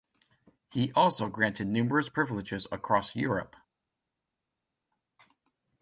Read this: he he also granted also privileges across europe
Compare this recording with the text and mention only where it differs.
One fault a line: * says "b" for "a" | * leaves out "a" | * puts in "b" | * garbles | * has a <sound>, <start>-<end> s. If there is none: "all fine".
* leaves out "he"
* says "numerous" for "also"